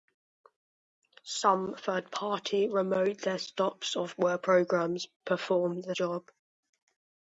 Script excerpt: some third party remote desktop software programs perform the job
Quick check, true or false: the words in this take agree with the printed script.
true